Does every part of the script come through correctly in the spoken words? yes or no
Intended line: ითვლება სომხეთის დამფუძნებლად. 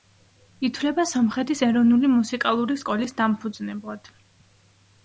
no